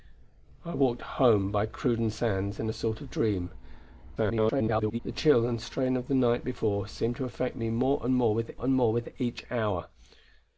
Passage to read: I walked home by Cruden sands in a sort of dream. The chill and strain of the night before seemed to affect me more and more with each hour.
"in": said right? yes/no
yes